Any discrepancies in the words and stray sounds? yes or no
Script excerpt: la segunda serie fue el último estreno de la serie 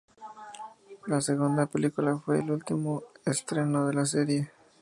yes